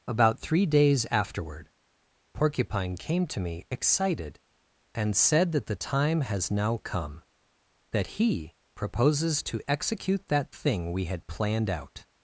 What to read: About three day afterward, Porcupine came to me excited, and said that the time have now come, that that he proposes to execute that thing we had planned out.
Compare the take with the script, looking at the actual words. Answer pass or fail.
fail